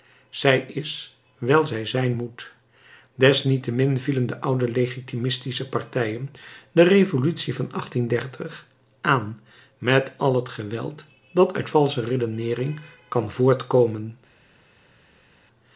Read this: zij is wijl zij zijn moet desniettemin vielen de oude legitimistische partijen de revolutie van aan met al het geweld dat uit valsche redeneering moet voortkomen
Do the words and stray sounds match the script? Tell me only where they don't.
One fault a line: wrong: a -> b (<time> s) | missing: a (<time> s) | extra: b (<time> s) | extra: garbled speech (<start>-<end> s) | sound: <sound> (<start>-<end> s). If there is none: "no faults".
wrong: moet -> kan (13.1 s)